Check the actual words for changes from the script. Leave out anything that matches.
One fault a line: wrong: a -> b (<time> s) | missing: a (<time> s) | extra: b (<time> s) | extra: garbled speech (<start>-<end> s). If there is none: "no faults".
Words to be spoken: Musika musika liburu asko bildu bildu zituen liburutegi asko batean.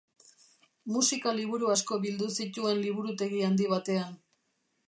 missing: musika (1.3 s)
missing: bildu (2.3 s)
wrong: asko -> handi (3.5 s)